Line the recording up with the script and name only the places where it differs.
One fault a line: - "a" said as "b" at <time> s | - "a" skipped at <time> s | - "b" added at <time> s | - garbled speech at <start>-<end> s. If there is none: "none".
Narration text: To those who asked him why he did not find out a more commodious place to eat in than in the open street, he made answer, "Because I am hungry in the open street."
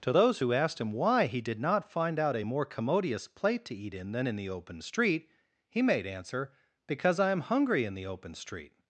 - "place" said as "plate" at 3.3 s